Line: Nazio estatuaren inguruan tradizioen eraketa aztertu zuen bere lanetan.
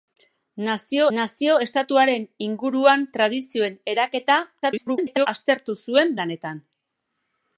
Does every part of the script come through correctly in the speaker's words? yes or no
no